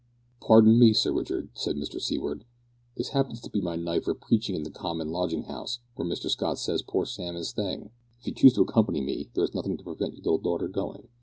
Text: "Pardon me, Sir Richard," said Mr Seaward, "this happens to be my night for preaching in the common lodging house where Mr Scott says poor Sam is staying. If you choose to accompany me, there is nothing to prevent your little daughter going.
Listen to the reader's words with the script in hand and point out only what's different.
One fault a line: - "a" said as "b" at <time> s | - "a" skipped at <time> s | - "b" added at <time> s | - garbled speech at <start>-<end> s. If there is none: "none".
none